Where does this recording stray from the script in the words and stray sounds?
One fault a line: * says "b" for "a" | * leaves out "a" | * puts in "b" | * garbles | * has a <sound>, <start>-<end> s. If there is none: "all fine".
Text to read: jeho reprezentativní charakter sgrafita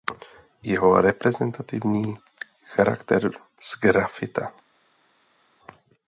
all fine